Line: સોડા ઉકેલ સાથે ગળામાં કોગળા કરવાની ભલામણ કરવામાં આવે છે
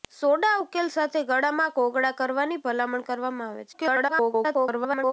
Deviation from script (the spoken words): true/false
true